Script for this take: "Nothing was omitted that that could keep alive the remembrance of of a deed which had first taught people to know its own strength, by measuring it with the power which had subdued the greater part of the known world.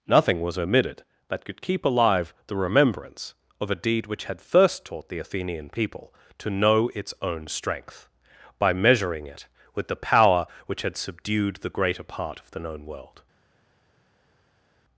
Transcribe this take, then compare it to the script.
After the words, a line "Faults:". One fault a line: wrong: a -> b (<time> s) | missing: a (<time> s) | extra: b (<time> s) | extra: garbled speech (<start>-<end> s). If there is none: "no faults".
"Nothing was omitted that could keep alive the remembrance of a deed which had first taught the Athenian people to know its own strength, by measuring it with the power which had subdued the greater part of the known world.
Faults:
missing: that (1.4 s)
missing: of (3.7 s)
extra: the Athenian (5.1 s)